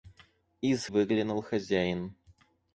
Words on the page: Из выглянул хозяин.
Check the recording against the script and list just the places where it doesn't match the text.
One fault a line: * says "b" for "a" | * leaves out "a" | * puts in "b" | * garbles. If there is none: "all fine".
all fine